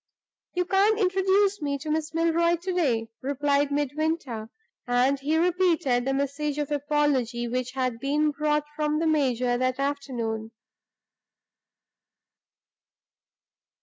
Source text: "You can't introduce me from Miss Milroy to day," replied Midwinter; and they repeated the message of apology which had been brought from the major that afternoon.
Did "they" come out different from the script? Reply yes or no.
yes